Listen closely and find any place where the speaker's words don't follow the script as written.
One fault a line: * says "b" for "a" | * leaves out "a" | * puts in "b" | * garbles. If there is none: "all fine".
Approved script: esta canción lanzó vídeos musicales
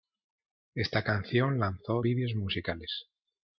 all fine